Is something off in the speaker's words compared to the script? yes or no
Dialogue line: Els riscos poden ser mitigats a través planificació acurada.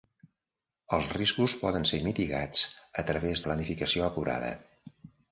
no